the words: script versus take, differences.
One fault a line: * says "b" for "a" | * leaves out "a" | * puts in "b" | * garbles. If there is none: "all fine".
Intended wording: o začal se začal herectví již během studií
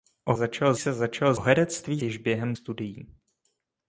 all fine